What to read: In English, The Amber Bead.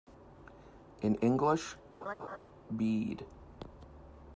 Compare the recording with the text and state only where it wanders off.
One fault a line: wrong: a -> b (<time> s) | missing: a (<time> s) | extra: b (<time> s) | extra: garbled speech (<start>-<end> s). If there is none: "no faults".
missing: The Amber (1.8 s)